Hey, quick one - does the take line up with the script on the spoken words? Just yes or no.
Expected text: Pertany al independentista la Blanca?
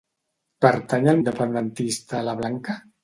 yes